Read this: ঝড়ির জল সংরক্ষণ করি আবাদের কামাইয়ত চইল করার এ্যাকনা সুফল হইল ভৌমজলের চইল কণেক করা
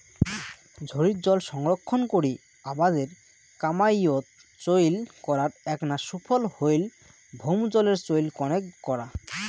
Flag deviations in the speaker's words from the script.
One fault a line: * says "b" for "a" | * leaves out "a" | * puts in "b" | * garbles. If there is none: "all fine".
all fine